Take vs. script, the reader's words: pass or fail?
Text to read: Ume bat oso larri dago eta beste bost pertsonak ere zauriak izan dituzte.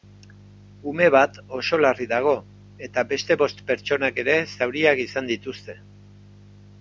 pass